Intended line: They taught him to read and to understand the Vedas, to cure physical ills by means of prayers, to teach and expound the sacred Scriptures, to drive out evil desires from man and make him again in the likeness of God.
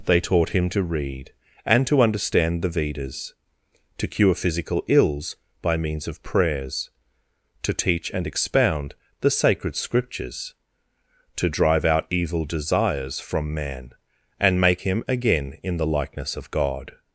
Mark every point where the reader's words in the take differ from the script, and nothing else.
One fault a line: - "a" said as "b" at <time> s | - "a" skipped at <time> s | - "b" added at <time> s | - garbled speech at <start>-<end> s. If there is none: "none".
none